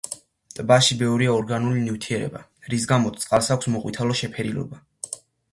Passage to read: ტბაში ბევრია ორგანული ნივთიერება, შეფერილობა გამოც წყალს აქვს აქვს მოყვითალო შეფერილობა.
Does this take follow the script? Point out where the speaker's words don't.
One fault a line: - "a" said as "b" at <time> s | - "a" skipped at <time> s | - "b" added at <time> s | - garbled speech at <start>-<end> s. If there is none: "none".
- "შეფერილობა" said as "რის" at 2.7 s
- "აქვს" skipped at 3.7 s